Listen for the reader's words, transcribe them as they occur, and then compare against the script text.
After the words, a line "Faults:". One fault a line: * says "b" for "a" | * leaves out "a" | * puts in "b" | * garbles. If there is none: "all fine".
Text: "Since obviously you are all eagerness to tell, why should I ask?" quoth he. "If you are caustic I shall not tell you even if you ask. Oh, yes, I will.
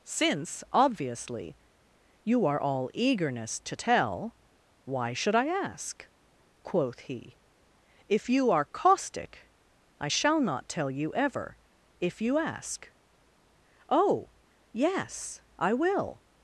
"Since obviously you are all eagerness to tell, why should I ask?" quoth he. "If you are caustic I shall not tell you ever if you ask. Oh, yes, I will.
Faults:
* says "ever" for "even"